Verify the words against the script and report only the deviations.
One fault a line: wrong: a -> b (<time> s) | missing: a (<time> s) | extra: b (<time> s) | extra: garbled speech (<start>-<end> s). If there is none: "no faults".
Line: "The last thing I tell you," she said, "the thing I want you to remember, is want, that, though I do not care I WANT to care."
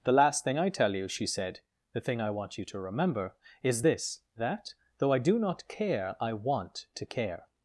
wrong: want -> this (3.8 s)